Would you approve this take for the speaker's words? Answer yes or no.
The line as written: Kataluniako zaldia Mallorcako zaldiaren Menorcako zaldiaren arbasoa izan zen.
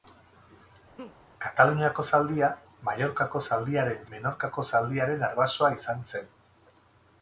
yes